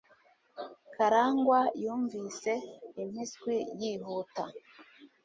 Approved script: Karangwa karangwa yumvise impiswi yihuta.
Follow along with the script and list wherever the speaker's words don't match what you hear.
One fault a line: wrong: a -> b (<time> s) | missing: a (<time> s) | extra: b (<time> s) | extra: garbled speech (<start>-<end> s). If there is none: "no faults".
missing: karangwa (1.6 s)